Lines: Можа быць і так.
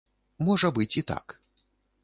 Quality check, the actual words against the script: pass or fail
pass